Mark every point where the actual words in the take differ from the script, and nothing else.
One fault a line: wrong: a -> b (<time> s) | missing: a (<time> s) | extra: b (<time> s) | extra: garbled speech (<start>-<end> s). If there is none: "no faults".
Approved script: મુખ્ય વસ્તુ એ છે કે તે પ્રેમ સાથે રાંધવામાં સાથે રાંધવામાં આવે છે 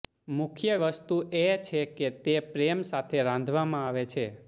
missing: સાથે રાંધવામાં (3.9 s)